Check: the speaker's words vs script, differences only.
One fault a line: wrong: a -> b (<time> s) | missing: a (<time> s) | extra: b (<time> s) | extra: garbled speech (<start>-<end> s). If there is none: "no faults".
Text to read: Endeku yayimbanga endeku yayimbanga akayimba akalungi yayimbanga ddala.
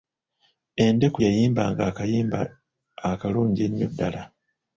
missing: endeku yayimbanga (1.8 s)
wrong: yayimbanga -> ennyo (3.7 s)